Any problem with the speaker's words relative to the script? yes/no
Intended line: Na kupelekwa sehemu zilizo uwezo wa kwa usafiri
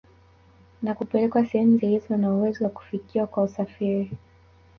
yes